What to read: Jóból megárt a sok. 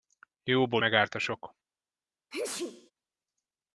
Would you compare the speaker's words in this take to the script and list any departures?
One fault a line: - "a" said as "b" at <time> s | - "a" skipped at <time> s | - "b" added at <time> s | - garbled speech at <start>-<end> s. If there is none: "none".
none